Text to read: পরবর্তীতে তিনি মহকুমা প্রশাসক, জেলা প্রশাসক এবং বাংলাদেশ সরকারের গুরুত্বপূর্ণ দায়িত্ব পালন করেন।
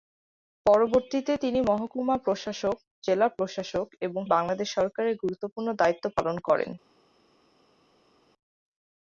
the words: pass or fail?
pass